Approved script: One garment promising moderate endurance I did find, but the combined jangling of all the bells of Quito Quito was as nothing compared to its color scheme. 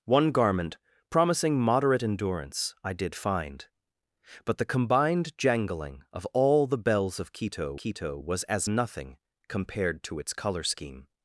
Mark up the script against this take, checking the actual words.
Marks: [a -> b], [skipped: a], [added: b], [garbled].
One garment promising moderate endurance I did find, but the combined jangling of all the bells of Quito Quito was as nothing compared to its color scheme.